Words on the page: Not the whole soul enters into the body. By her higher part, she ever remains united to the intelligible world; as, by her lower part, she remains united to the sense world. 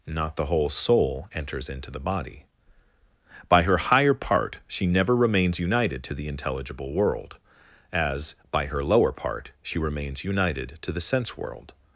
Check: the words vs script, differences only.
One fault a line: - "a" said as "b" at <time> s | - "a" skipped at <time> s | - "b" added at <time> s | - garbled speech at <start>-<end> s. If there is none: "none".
- "ever" said as "never" at 4.9 s